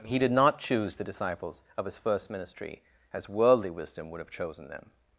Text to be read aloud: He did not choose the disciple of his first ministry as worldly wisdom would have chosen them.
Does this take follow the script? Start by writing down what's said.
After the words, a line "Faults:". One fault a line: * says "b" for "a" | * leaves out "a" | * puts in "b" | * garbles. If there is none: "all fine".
He did not choose the disciples of his first ministry as worldly wisdom would have chosen them.
Faults:
* says "disciples" for "disciple"